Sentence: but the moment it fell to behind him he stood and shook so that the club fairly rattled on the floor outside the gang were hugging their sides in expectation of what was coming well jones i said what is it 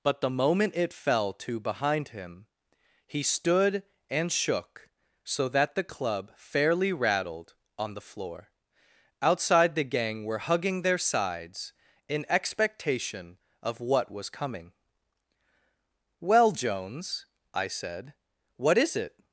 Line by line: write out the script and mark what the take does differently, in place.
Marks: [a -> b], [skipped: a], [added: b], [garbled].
but the moment it fell to behind him he stood and shook so that the club fairly rattled on the floor outside the gang were hugging their sides in expectation of what was coming well jones i said what is it